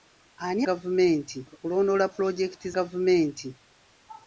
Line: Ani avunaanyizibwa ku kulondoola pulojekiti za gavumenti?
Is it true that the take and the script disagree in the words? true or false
true